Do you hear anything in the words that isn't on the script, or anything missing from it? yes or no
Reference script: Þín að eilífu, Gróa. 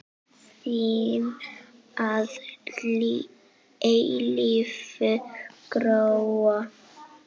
no